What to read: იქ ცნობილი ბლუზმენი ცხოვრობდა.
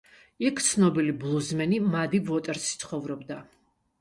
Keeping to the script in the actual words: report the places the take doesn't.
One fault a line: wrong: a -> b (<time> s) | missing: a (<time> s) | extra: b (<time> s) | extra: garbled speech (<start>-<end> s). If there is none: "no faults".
extra: მადი ვოტერსი (2.0 s)